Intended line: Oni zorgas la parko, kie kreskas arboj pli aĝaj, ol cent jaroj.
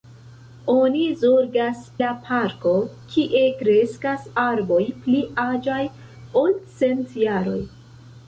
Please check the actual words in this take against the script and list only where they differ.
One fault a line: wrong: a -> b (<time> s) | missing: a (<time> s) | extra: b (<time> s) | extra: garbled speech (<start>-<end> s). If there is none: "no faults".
no faults